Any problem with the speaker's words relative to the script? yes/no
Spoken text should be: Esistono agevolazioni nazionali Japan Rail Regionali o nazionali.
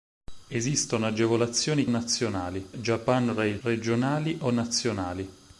no